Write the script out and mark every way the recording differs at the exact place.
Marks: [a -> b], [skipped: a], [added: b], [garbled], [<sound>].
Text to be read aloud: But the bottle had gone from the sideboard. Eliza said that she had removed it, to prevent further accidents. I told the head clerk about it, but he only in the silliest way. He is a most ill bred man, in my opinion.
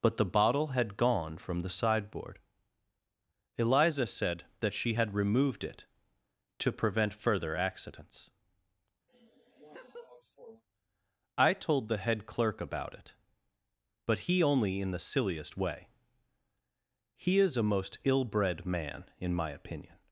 But the bottle had gone from the sideboard. Eliza said that she had removed it, to prevent further accidents. [laugh] I told the head clerk about it, but he only in the silliest way. He is a most ill bred man, in my opinion.